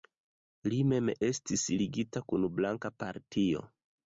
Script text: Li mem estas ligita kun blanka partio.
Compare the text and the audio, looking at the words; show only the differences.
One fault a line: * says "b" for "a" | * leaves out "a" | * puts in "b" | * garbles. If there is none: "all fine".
* says "estis" for "estas"